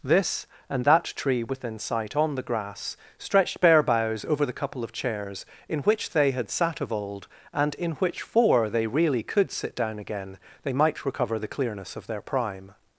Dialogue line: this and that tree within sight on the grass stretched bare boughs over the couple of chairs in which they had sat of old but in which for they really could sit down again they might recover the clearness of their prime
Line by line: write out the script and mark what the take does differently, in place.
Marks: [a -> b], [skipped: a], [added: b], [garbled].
this and that tree within sight on the grass stretched bare boughs over the couple of chairs in which they had sat of old [but -> and] in which for they really could sit down again they might recover the clearness of their prime